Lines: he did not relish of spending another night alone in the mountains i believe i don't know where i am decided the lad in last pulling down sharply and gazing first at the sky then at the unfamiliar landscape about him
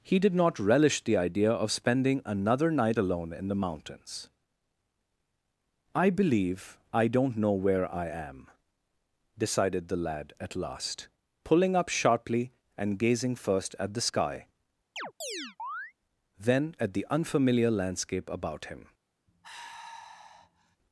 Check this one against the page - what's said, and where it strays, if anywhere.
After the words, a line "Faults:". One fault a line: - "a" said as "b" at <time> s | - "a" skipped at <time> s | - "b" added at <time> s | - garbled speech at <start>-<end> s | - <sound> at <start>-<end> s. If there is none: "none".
he did not relish the idea of spending another night alone in the mountains i believe i don't know where i am decided the lad at last pulling up sharply and gazing first at the sky then at the unfamiliar landscape about him
Faults:
- "the idea" added at 1.0 s
- "in" said as "at" at 10.4 s
- "down" said as "up" at 11.7 s
- chirp at 15.0-15.9 s
- sigh at 19.3-20.8 s